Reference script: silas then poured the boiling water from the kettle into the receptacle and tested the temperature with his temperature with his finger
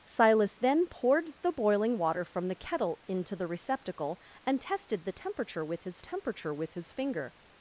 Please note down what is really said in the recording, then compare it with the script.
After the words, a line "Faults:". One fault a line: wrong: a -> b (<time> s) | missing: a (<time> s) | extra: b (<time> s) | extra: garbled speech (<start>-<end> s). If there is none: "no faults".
silas then poured the boiling water from the kettle into the receptacle and tested the temperature with his temperature with his finger
Faults:
no faults